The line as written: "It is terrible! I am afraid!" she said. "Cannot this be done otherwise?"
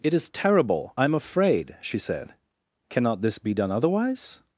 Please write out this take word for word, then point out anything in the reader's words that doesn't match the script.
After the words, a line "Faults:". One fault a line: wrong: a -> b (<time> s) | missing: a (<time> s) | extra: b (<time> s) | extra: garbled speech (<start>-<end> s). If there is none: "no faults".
"It is terrible! I am afraid!" she said. "Cannot this be done otherwise?"
Faults:
no faults